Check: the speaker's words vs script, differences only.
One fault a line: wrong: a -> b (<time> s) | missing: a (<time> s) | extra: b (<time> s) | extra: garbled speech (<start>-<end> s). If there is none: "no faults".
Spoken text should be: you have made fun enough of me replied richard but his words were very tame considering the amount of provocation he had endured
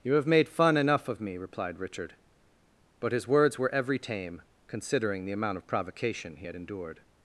wrong: very -> every (3.7 s)